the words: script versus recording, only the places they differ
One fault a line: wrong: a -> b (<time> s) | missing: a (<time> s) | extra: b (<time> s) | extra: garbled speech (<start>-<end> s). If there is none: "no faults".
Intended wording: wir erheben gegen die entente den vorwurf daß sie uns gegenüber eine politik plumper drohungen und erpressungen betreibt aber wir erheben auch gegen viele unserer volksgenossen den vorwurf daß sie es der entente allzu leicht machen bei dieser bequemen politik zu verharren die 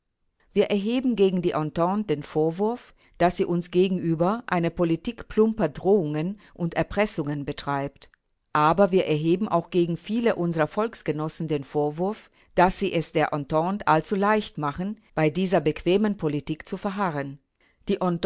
no faults